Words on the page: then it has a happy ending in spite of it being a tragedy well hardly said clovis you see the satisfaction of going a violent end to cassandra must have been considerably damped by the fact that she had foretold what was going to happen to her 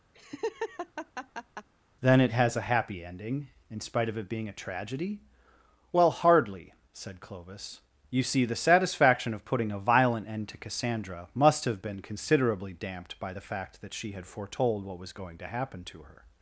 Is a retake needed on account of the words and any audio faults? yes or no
yes